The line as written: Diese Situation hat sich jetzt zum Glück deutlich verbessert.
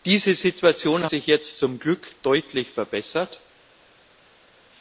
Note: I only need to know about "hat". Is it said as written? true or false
false